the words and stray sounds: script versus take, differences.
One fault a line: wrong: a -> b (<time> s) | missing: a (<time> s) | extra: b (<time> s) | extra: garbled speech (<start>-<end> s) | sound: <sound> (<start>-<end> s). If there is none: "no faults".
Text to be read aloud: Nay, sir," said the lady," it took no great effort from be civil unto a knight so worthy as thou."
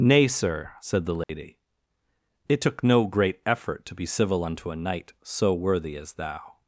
sound: dropout (1.2-1.3 s)
wrong: from -> to (3.8 s)